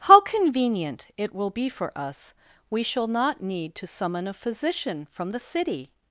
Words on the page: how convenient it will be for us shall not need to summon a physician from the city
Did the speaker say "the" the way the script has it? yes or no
yes